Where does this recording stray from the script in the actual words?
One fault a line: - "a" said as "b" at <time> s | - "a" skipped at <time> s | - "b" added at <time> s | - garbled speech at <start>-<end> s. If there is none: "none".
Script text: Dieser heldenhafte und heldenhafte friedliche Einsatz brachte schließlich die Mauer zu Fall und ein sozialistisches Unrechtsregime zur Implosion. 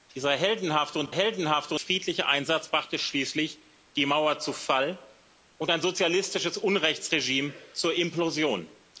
none